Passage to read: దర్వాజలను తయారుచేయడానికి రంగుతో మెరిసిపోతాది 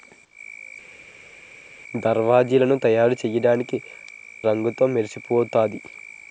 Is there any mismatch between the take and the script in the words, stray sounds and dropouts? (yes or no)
no